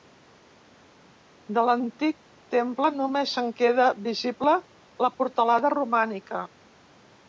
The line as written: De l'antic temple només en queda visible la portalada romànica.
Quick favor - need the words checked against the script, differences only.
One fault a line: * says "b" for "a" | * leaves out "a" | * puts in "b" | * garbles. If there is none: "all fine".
all fine